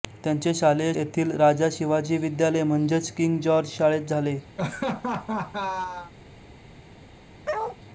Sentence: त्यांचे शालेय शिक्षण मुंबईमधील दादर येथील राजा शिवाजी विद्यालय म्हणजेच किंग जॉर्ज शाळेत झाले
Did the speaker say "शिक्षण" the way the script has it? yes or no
no